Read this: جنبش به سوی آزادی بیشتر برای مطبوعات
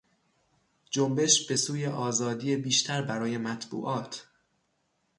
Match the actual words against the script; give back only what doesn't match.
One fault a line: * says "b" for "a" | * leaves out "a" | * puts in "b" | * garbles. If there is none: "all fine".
all fine